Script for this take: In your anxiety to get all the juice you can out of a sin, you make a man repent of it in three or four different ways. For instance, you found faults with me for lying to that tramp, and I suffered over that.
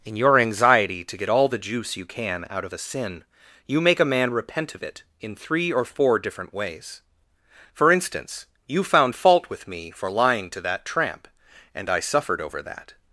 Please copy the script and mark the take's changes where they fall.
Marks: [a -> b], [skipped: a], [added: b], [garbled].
In your anxiety to get all the juice you can out of a sin, you make a man repent of it in three or four different ways. For instance, you found [faults -> fault] with me for lying to that tramp, and I suffered over that.